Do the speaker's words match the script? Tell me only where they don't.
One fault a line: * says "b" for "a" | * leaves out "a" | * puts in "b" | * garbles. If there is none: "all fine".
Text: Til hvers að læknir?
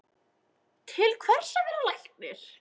* puts in "vera"